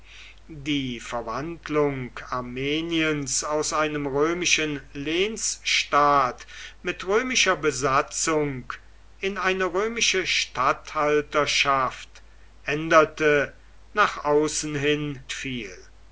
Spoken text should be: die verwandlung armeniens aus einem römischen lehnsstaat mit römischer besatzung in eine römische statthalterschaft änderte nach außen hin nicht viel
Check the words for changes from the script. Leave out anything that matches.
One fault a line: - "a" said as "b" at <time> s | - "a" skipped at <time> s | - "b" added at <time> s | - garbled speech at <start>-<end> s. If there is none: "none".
- "nicht" skipped at 15.2 s